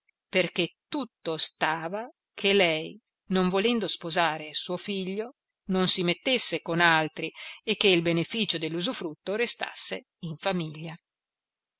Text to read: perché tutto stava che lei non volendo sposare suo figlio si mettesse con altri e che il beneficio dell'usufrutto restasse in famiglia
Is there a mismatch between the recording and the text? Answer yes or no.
yes